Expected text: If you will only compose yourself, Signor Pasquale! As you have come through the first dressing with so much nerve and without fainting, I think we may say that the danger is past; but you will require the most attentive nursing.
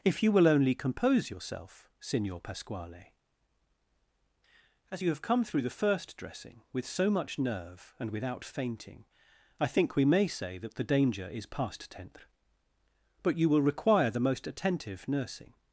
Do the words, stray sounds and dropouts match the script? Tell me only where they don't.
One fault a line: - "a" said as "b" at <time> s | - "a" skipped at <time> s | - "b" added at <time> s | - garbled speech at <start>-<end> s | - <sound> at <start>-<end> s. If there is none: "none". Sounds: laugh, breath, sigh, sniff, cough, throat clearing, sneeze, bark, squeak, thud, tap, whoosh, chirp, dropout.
- "tenth" added at 11.9 s